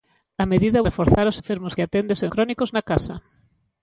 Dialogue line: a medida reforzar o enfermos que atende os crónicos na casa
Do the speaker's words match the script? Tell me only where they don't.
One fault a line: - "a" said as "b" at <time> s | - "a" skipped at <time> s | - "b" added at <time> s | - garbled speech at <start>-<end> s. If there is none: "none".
none